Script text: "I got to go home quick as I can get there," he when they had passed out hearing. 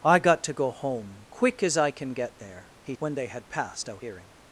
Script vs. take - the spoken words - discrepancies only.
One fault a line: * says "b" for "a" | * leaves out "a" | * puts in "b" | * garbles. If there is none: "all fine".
all fine